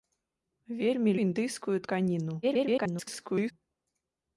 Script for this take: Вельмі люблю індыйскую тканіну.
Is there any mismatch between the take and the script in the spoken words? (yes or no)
yes